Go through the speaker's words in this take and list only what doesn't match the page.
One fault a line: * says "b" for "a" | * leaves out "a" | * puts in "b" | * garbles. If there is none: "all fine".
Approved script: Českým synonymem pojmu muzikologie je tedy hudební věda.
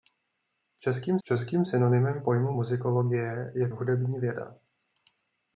* puts in "českým"
* leaves out "tedy"